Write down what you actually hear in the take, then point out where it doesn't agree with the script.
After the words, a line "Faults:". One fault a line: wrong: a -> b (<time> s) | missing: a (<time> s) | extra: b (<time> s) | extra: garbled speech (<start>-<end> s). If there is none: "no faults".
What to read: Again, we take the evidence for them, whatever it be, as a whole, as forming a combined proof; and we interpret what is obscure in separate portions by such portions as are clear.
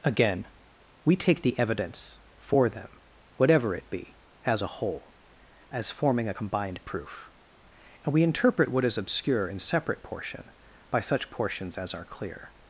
Again, we take the evidence for them, whatever it be, as a whole, as forming a combined proof; and we interpret what is obscure in separate portion by such portions as are clear.
Faults:
wrong: portions -> portion (10.0 s)